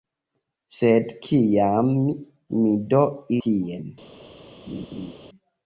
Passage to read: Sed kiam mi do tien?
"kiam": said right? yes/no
yes